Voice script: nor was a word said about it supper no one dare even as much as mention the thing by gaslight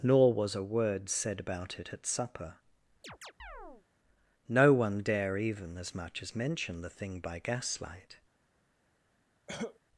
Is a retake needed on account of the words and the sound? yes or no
yes